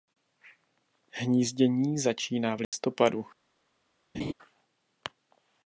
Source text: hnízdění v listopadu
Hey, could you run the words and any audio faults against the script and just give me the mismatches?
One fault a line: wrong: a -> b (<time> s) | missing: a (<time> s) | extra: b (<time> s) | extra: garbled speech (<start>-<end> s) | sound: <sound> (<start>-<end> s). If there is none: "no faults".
extra: začíná (2.0 s)
sound: dropout (2.6-2.7 s)
sound: laugh (4.1-4.3 s)